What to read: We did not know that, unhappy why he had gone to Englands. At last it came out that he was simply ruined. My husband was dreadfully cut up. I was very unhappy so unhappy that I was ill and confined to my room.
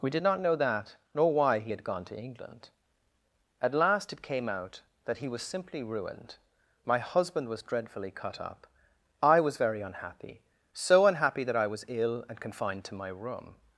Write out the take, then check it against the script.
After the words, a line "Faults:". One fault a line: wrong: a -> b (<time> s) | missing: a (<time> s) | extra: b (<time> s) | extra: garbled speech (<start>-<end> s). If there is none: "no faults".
We did not know that, nor why he had gone to England. At last it came out that he was simply ruined. My husband was dreadfully cut up. I was very unhappy so unhappy that I was ill and confined to my room.
Faults:
wrong: unhappy -> nor (1.1 s)
wrong: Englands -> England (2.2 s)